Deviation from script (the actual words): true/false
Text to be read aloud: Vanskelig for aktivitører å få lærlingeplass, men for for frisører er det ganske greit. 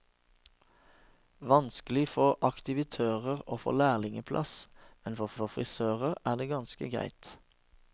false